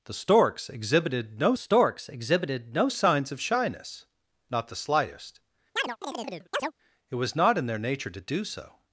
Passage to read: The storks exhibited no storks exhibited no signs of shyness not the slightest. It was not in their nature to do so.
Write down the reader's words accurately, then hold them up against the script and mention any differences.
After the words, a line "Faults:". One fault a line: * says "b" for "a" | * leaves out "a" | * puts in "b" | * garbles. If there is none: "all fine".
The storks exhibited no storks exhibited no signs of shyness not the slightest. It was not in their nature to do so.
Faults:
all fine